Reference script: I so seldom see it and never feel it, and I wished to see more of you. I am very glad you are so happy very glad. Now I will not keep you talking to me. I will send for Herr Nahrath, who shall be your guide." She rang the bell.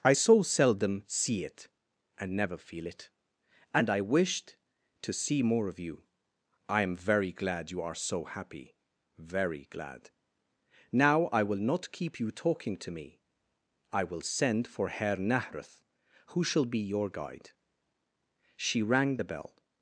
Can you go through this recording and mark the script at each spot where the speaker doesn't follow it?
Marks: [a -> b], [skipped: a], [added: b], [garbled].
I so seldom see it and never feel it, and I wished to see more of you. I am very glad you are so happy very glad. Now I will not keep you talking to me. I will send for Herr Nahrath, who shall be your guide." She rang the bell.